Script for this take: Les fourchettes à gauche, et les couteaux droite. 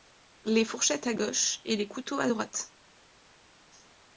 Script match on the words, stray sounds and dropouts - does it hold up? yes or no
no